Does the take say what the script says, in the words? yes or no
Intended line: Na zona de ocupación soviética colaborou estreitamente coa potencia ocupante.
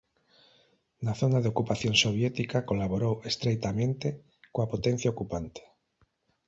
yes